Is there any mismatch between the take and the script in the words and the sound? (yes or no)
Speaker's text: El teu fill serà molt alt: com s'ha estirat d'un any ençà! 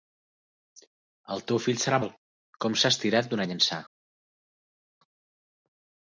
yes